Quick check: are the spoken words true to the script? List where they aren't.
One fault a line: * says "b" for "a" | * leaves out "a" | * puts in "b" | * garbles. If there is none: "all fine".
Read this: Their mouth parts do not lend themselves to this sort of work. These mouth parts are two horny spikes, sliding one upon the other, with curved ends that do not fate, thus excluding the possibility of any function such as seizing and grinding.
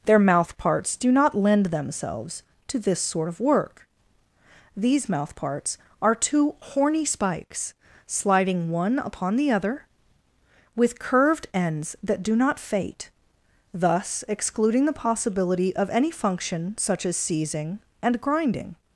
all fine